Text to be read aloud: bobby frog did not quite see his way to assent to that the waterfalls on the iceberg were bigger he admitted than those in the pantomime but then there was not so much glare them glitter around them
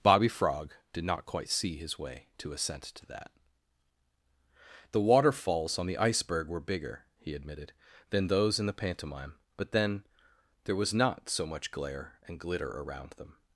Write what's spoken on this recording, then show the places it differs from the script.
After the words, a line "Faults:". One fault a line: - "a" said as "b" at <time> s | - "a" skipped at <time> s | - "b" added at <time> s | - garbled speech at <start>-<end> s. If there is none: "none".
bobby frog did not quite see his way to assent to that the waterfalls on the iceberg were bigger he admitted than those in the pantomime but then there was not so much glare and glitter around them
Faults:
- "them" said as "and" at 12.3 s